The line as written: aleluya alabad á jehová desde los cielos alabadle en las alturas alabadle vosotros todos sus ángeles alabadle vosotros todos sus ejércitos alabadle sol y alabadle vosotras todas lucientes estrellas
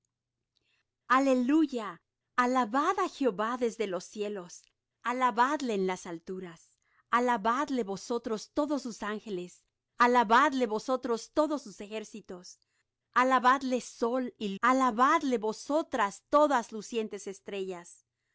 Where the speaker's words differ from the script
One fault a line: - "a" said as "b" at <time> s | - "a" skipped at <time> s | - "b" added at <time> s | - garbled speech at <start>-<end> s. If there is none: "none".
none